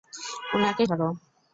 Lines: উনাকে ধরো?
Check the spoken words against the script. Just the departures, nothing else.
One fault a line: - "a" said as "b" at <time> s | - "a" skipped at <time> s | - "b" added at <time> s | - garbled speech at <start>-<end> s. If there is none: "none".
none